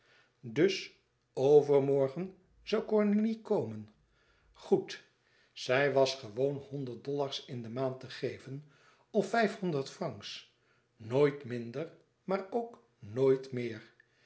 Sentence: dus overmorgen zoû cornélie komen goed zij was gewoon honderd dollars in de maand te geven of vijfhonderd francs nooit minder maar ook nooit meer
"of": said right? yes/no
yes